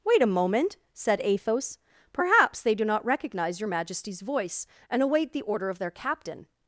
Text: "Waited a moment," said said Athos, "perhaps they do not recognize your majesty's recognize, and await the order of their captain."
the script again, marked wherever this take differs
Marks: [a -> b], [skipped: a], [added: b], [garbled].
["Waited -> Wait] a moment," said [skipped: said] Athos, "perhaps they do not recognize your majesty's [recognize, -> voice] and await the order of their captain."